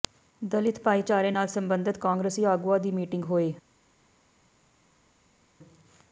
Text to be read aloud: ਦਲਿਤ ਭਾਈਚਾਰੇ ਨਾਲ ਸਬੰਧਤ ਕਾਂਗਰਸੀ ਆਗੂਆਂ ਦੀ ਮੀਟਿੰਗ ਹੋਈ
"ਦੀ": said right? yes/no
yes